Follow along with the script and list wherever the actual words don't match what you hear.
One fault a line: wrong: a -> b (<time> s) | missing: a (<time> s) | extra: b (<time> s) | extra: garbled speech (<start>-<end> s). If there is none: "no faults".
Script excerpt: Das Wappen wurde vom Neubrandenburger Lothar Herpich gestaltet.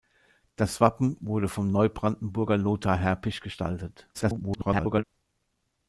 extra: garbled speech (4.1-5.0 s)